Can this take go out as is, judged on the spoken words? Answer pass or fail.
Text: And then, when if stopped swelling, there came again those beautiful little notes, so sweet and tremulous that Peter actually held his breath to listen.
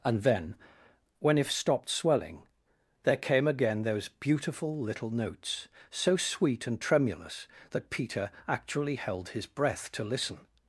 pass